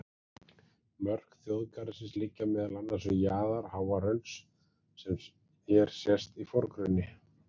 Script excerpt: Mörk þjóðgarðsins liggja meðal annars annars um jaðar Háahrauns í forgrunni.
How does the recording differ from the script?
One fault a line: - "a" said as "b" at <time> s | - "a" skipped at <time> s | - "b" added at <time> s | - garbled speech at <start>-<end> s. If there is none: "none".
- "annars" skipped at 3.1 s
- "sem hér sést" added at 5.0 s